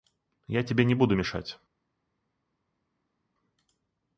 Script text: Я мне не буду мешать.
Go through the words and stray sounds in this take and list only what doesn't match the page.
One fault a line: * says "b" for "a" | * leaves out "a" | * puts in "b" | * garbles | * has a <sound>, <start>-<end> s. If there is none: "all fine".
* says "тебе" for "мне"